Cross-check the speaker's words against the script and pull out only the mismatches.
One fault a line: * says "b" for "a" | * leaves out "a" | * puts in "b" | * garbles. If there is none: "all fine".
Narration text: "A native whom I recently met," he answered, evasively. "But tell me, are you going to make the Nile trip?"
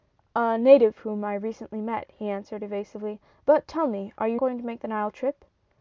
all fine